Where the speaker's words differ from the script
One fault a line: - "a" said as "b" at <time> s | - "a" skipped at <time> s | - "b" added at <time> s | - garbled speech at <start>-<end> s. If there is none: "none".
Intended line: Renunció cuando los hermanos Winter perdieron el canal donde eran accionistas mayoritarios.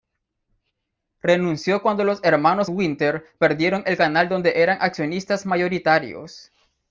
none